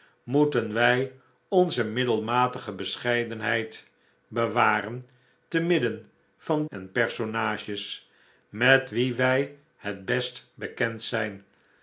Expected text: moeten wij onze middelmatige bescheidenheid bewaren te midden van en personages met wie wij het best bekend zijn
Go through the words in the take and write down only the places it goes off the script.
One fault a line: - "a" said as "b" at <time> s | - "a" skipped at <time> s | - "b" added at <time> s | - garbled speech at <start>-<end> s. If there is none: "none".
none